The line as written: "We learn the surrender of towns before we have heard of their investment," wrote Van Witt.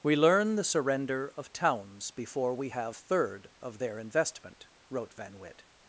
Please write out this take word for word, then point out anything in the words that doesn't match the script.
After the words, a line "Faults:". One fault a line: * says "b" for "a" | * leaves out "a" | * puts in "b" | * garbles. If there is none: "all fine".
"We learn the surrender of towns before we have third of their investment," wrote Van Witt.
Faults:
* says "third" for "heard"